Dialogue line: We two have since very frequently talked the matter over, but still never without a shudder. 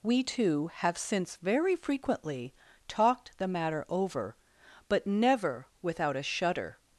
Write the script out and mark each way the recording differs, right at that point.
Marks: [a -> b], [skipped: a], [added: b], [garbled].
We two have since very frequently talked the matter over, but [skipped: still] never without a shudder.